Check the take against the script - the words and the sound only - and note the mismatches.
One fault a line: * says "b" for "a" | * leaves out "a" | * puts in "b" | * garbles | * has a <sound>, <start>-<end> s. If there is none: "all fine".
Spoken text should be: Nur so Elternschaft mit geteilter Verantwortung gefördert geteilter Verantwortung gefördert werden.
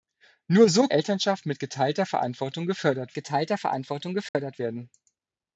* has a dropout, 4.3-4.3 s